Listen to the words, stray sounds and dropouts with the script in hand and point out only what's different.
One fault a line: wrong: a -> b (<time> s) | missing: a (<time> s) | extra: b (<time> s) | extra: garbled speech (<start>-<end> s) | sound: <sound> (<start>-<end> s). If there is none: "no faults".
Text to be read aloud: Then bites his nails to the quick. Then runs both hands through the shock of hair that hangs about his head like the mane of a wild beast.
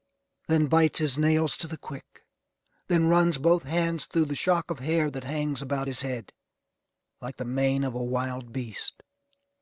no faults